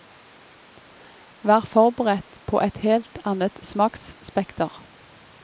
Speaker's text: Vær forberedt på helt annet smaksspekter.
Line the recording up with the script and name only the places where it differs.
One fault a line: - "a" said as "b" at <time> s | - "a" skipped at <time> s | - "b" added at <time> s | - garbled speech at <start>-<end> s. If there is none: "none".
- "et" added at 2.6 s